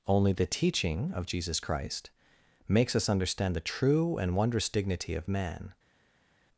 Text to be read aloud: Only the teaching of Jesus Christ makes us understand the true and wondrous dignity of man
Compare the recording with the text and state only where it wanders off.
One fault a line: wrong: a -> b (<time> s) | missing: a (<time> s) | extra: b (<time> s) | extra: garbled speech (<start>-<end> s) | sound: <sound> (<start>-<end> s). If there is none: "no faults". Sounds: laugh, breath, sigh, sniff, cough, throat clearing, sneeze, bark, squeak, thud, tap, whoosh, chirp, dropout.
no faults